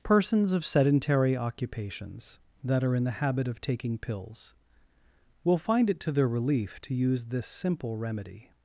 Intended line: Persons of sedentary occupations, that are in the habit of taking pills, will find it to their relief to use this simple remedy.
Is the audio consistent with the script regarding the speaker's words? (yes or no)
yes